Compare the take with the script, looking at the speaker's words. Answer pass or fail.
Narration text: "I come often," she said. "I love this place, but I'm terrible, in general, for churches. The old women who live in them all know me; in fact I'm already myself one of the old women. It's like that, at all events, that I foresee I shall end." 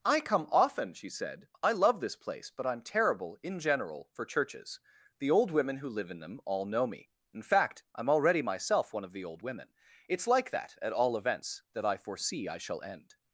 pass